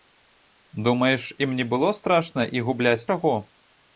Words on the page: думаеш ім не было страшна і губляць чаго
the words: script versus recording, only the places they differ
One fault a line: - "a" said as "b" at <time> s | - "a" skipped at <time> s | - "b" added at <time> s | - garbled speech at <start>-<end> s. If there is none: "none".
none